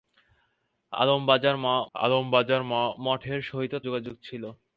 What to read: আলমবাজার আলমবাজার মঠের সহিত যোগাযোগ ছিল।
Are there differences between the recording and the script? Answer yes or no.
no